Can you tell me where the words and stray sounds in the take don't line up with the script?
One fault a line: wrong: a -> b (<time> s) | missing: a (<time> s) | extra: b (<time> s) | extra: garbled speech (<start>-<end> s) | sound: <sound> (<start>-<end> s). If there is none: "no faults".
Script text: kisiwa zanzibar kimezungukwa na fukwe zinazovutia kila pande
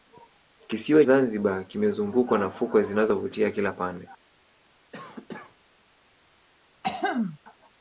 sound: cough (4.9-5.6 s)
sound: throat clearing (6.8-7.4 s)